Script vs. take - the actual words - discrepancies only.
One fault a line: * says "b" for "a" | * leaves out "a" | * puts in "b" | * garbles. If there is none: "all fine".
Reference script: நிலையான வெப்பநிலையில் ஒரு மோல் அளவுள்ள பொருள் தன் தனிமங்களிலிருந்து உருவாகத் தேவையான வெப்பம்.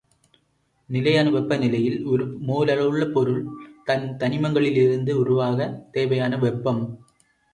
all fine